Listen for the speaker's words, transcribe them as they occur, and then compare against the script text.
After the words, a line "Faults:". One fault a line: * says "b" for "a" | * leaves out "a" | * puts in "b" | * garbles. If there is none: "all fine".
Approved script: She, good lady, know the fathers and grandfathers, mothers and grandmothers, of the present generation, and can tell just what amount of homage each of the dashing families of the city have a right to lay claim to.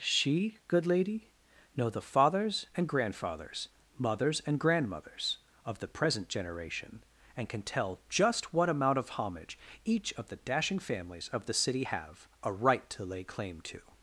She, good lady, know the fathers and grandfathers, mothers and grandmothers, of the present generation, and can tell just what amount of homage each of the dashing families of the city have a right to lay claim to.
Faults:
all fine